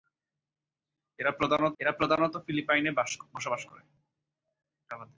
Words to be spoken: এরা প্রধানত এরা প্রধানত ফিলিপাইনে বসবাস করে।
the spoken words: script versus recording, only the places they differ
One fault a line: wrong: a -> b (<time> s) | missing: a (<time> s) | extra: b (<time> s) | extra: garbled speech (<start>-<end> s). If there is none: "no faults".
no faults